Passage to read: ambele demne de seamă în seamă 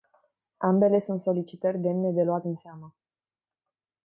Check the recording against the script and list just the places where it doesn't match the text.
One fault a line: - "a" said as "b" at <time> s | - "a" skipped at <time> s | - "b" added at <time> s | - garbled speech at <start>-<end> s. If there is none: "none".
- "sunt solicitări" added at 1.0 s
- "seamă" said as "luat" at 2.2 s